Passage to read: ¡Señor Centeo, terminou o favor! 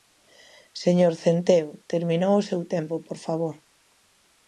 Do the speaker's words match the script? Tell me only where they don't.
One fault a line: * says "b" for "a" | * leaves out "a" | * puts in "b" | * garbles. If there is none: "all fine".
* puts in "seu tempo por"